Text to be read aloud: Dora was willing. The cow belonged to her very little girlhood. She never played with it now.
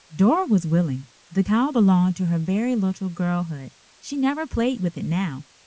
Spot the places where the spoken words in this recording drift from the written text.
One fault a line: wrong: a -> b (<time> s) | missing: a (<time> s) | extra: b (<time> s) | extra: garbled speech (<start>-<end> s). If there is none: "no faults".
no faults